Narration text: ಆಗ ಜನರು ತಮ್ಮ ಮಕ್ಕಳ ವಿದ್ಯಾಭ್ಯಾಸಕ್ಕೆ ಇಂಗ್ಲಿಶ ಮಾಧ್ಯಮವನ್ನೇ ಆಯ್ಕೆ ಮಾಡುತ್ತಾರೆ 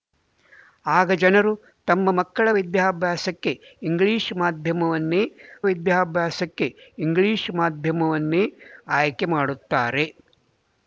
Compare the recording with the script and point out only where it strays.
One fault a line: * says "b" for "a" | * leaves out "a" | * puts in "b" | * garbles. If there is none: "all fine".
* puts in "ವಿದ್ಯಾಭ್ಯಾಸಕ್ಕೆ ಇಂಗ್ಲಿಶ ಮಾಧ್ಯಮವನ್ನೇ"